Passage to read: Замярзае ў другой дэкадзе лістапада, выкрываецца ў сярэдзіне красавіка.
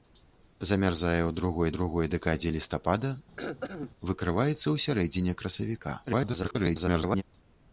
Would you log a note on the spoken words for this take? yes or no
yes